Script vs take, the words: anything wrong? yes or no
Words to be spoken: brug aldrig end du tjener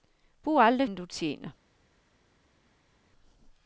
no